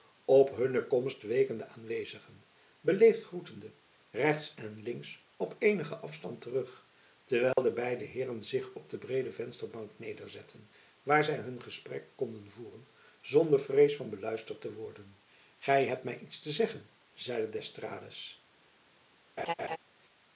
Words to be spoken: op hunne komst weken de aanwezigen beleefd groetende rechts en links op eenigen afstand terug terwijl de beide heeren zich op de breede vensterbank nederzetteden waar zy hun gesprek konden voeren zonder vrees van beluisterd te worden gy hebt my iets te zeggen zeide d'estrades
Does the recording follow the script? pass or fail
pass